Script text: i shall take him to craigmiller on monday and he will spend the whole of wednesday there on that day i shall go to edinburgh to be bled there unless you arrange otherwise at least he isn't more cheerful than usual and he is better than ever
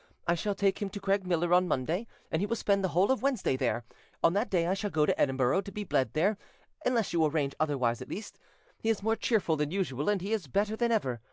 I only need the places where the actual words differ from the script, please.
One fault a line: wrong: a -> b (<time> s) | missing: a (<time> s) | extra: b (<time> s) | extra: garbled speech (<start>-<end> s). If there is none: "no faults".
wrong: isn't -> is (8.9 s)